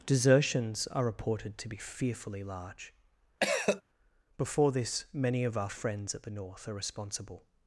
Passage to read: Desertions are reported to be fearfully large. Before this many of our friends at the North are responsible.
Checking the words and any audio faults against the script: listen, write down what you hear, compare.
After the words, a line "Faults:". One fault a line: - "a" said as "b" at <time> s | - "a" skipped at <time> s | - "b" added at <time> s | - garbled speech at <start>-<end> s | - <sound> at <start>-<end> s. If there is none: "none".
Desertions are reported to be fearfully large. Before this many of our friends at the North are responsible.
Faults:
- cough at 3.4-3.8 s